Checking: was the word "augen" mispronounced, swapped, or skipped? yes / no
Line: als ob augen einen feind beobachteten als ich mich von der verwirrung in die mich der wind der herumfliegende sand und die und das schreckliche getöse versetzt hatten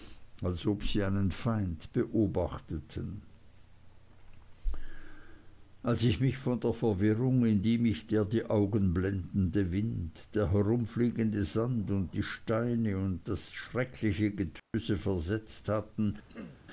yes